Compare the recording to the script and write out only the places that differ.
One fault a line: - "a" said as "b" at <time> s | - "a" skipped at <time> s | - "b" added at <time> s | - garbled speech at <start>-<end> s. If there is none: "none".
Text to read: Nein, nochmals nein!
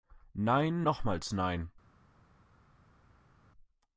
none